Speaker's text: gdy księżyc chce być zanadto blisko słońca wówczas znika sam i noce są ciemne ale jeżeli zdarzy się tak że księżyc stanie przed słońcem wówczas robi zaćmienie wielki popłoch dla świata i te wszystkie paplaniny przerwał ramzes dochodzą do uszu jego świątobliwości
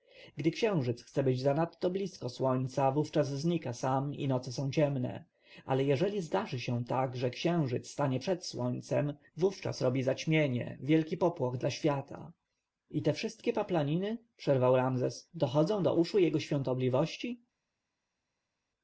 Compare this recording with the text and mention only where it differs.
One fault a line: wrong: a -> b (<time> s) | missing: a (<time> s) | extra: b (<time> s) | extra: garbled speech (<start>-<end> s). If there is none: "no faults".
no faults